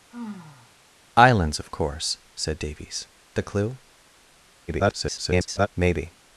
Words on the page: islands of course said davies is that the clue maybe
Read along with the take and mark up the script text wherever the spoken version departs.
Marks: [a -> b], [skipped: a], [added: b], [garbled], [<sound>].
[sigh] islands of course said davies [skipped: is that] the clue [garbled] maybe